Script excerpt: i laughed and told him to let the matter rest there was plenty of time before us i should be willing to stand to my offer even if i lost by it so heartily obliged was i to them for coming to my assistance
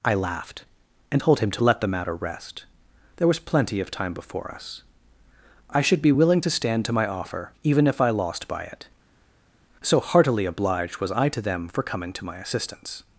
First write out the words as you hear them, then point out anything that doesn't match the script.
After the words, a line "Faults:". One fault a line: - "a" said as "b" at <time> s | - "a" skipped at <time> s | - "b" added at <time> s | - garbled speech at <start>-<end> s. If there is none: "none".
i laughed and told him to let the matter rest there was plenty of time before us i should be willing to stand to my offer even if i lost by it so heartily obliged was i to them for coming to my assistance
Faults:
none